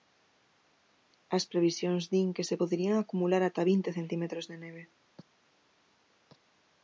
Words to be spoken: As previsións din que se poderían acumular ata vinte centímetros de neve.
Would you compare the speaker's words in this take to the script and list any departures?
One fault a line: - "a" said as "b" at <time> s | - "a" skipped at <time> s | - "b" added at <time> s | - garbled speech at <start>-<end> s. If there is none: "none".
none